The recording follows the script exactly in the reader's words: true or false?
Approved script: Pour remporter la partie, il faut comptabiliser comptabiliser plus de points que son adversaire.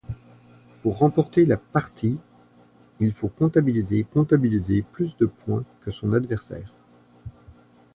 true